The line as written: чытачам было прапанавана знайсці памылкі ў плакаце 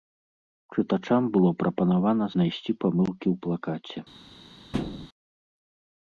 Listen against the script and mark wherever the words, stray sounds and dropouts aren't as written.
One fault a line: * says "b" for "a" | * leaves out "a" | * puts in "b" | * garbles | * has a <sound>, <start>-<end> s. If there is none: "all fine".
* has a thud, 4.7-5.1 s